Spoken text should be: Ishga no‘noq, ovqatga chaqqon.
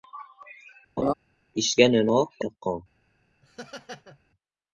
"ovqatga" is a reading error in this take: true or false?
true